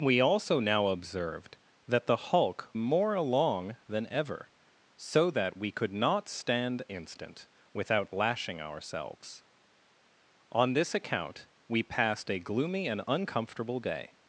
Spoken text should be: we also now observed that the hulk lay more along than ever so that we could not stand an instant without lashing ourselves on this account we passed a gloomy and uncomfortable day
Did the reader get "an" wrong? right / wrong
wrong